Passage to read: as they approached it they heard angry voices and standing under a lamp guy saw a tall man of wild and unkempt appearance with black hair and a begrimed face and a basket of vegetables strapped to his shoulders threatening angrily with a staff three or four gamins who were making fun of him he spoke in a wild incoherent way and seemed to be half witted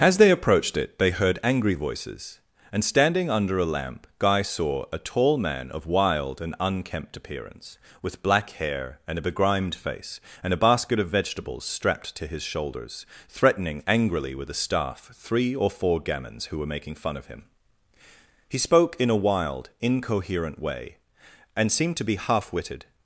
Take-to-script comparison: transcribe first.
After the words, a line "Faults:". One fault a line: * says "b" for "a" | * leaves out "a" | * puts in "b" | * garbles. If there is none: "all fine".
as they approached it they heard angry voices and standing under a lamp guy saw a tall man of wild and unkempt appearance with black hair and a begrimed face and a basket of vegetables strapped to his shoulders threatening angrily with a staff three or four gamins who were making fun of him he spoke in a wild incoherent way and seemed to be half witted
Faults:
all fine